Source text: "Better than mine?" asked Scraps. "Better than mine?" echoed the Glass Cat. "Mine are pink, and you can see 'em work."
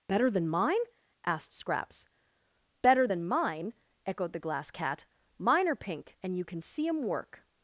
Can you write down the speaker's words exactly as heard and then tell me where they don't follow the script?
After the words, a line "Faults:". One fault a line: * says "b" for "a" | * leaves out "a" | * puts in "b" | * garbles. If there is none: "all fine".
"Better than mine?" asked Scraps. "Better than mine?" echoed the Glass Cat. "Mine are pink, and you can see 'em work."
Faults:
all fine